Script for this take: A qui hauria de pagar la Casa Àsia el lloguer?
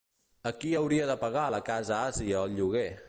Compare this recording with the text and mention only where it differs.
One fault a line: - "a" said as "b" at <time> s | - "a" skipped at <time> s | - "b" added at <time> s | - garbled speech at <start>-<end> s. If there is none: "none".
none